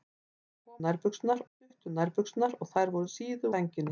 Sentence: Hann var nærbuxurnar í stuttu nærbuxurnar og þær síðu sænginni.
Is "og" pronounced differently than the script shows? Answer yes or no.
no